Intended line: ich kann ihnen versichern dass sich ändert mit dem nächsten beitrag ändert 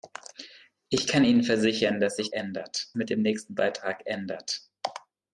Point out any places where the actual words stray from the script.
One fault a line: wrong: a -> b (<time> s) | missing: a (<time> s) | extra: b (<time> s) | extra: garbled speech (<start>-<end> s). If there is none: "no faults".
no faults